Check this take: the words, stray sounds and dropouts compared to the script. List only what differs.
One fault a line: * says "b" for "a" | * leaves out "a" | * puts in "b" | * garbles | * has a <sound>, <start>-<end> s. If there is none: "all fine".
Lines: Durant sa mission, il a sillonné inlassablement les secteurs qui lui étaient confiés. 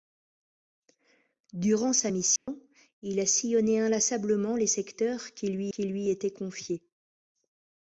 * has a dropout, 2.4-2.5 s
* puts in "qui lui"